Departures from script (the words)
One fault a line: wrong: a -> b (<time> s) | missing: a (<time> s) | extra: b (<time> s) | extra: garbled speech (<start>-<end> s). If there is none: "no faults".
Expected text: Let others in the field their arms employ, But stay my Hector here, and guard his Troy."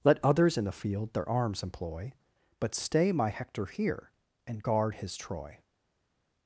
no faults